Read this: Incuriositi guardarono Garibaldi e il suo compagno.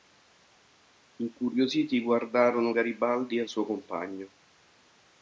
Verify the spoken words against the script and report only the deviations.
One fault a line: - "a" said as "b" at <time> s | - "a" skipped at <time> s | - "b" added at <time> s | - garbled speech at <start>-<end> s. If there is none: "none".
none